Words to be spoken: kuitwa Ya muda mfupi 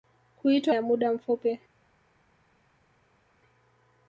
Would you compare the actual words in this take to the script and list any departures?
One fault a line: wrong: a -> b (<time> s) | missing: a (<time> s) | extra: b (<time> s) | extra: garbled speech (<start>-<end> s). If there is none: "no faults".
no faults